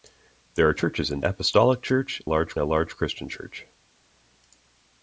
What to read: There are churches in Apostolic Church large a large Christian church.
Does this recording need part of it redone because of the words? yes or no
no